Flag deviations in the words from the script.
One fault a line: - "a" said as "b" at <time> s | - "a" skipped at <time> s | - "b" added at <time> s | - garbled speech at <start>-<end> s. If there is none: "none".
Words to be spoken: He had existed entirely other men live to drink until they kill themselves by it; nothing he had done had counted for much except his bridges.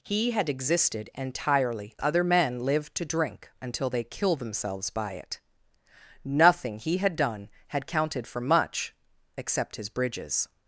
none